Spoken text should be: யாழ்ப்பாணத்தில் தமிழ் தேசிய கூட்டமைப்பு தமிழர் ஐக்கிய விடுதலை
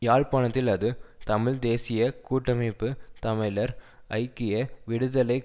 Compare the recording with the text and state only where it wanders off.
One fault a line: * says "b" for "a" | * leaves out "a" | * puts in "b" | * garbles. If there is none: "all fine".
* puts in "அது"